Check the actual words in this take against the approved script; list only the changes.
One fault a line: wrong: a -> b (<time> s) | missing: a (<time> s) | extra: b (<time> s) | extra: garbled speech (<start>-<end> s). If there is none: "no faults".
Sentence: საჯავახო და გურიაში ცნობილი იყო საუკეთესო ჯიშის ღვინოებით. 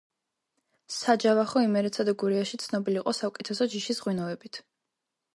extra: იმერეთსა (1.6 s)